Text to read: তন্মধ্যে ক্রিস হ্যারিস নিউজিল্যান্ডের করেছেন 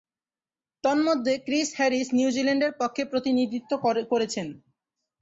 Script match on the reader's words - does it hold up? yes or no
no